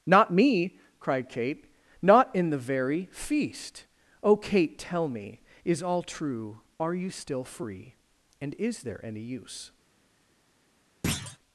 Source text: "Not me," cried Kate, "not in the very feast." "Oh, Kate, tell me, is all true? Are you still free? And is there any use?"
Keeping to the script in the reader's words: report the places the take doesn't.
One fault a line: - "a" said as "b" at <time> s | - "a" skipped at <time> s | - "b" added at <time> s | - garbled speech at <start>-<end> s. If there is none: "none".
none